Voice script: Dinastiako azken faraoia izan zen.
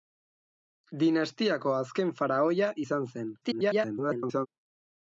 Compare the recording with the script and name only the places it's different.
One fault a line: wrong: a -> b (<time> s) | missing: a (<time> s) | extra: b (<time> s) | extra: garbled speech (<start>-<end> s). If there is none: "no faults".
extra: garbled speech (3.4-4.5 s)